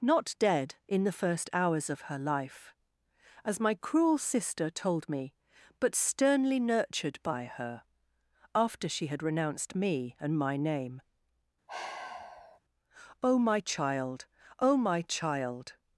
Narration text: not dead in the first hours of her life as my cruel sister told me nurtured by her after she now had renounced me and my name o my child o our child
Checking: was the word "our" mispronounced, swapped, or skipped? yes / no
yes